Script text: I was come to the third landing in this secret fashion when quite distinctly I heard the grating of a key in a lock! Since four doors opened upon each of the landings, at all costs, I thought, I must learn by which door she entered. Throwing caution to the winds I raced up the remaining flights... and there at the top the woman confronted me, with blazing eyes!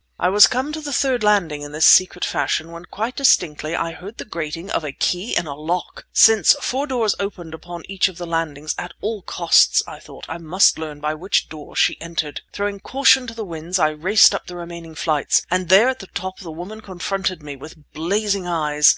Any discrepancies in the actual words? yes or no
no